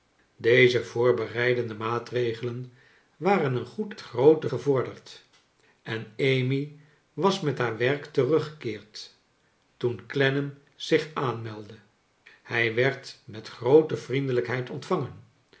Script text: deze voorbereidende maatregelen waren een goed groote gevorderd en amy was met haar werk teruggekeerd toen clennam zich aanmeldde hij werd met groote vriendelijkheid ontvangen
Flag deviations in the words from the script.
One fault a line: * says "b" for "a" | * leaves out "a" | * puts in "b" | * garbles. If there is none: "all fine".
all fine